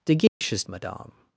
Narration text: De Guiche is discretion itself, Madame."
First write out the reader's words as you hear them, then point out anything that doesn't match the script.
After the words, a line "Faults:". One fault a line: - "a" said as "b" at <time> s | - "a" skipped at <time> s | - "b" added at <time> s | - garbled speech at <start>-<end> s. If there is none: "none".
De Guiche is Madame."
Faults:
- "discretion itself" skipped at 0.6 s